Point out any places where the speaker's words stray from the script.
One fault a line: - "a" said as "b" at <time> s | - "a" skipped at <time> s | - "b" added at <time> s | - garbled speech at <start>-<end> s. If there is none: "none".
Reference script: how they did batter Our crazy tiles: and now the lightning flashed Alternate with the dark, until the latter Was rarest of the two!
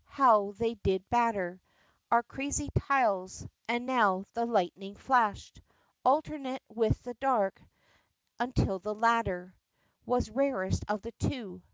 none